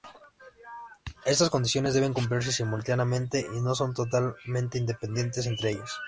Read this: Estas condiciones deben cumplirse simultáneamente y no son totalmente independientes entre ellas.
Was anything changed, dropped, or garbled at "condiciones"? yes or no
no